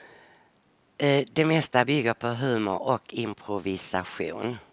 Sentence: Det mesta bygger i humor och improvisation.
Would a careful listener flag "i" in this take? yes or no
yes